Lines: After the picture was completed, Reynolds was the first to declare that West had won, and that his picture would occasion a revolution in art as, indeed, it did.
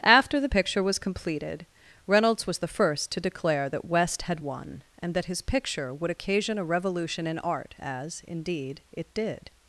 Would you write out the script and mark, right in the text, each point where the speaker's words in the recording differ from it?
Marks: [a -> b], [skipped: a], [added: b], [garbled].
After the picture was completed, Reynolds was the first to declare that West had won, and that his picture would occasion a revolution in art as, indeed, it did.